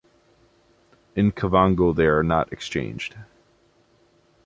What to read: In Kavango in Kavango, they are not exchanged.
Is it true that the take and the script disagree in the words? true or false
true